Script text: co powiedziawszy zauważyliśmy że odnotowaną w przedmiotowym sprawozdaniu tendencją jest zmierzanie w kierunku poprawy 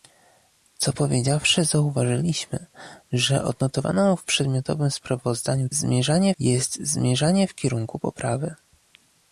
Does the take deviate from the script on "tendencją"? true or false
true